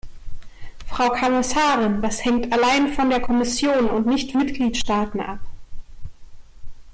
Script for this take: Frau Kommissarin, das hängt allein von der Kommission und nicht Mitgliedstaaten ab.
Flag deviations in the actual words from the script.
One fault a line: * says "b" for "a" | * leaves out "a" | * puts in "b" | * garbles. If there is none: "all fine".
all fine